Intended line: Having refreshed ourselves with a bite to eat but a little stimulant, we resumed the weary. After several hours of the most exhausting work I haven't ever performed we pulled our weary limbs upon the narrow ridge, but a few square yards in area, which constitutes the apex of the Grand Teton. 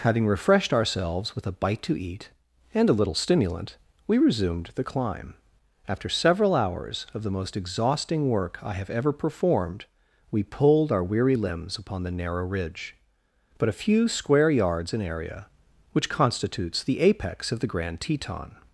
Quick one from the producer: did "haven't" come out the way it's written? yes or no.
no